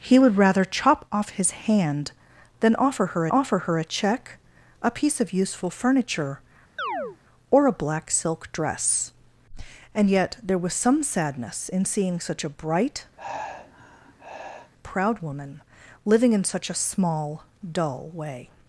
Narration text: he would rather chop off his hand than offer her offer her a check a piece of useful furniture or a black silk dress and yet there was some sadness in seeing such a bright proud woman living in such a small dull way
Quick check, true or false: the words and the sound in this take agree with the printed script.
false